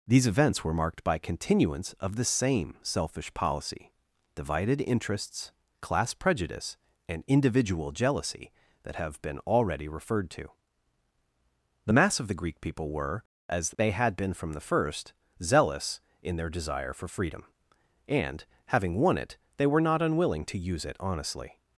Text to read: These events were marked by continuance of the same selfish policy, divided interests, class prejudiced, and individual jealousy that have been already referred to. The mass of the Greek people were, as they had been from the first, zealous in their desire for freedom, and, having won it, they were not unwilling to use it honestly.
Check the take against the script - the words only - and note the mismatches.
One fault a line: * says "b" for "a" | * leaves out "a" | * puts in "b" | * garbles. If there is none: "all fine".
* says "prejudice" for "prejudiced"